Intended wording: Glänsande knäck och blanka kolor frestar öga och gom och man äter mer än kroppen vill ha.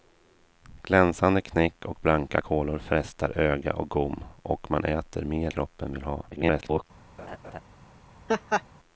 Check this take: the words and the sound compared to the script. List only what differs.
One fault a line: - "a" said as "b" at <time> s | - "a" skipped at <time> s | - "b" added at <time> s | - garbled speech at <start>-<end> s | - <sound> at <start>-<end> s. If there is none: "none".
- "än" skipped at 5.5 s
- garbled speech at 6.3-6.8 s
- laugh at 7.2-7.6 s
- laugh at 8.3-8.6 s